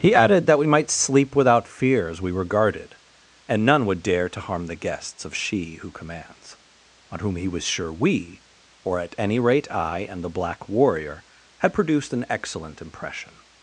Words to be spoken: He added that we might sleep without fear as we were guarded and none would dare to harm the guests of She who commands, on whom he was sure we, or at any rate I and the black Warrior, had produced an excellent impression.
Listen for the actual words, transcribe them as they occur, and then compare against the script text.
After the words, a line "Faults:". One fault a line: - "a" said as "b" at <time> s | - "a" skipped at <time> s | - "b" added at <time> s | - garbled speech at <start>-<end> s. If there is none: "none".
He added that we might sleep without fear as we were guarded and none would dare to harm the guests of She who commands, on whom he was sure we, or at any rate I and the black Warrior, had produced an excellent impression.
Faults:
none